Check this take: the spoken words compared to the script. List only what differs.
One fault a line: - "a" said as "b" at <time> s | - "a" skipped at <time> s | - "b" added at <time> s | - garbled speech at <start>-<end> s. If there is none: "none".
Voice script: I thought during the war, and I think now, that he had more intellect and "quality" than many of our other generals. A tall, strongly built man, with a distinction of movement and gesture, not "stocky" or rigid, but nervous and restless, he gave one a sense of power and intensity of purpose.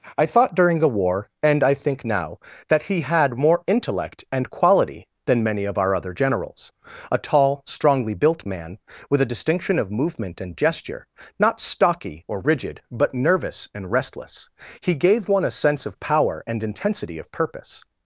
none